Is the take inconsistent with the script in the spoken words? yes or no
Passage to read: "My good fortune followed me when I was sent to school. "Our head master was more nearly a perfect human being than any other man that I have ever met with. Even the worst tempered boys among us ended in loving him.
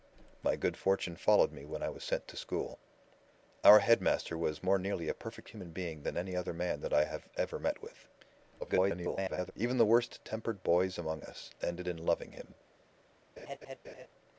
yes